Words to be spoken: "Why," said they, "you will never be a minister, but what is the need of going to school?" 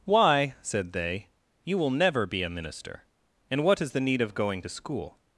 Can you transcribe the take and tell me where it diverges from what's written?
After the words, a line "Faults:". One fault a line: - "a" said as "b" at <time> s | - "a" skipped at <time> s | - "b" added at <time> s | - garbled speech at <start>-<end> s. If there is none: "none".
"Why," said they, "you will never be a minister, and what is the need of going to school?"
Faults:
- "but" said as "and" at 3.5 s